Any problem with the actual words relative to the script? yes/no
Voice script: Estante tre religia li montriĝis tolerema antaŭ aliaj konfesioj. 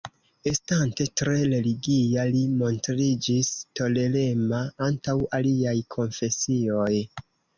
no